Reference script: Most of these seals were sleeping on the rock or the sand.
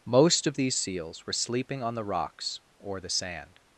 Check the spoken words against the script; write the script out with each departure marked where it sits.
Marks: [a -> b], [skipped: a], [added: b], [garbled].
Most of these seals were sleeping on the [rock -> rocks] or the sand.